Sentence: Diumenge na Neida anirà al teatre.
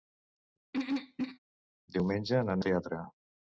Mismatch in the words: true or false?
true